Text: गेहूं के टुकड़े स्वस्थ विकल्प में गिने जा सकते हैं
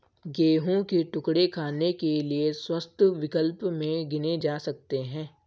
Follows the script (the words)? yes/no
no